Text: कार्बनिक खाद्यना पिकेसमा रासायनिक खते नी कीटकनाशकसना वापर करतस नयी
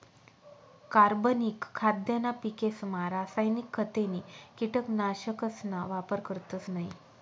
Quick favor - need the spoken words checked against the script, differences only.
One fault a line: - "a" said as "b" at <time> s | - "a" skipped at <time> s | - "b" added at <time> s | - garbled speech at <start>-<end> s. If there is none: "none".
none